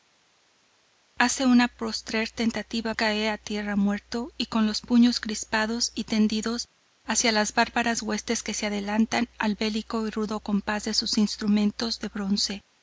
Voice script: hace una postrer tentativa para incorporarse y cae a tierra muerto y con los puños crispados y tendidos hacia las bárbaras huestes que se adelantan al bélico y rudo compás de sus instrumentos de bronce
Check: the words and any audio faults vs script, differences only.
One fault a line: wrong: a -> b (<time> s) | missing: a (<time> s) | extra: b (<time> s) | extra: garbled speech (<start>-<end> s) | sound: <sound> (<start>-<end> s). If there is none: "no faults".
missing: para incorporarse y (2.9 s)